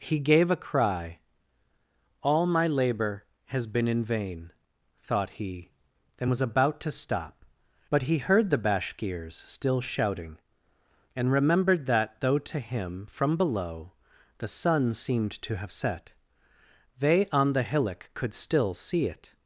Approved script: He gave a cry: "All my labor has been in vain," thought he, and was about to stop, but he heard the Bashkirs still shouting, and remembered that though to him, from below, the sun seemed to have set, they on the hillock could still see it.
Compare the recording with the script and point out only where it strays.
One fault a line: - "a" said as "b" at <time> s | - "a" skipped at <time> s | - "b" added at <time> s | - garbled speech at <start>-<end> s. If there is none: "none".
none